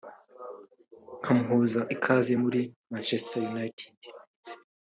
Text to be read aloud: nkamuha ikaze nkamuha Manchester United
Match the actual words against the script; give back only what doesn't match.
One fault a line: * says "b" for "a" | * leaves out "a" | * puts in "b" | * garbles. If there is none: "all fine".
* says "muri" for "nkamuha"